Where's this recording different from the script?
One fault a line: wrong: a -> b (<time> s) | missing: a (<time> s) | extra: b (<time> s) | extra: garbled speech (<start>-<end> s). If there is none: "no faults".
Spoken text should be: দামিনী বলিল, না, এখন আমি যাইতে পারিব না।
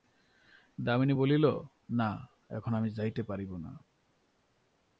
no faults